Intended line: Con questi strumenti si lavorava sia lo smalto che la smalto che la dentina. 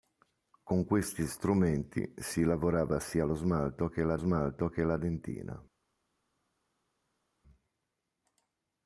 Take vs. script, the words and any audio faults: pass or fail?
pass